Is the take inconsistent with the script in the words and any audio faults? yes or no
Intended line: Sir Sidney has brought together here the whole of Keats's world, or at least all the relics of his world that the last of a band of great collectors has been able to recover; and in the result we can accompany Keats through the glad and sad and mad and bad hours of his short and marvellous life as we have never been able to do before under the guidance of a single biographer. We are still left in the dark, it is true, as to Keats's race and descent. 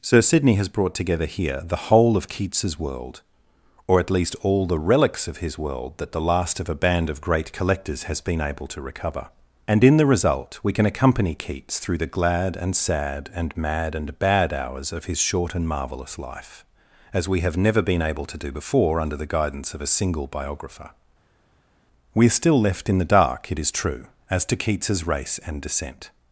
no